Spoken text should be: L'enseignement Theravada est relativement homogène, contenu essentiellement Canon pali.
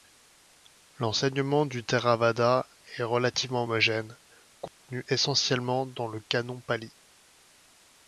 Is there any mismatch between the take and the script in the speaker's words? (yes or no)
yes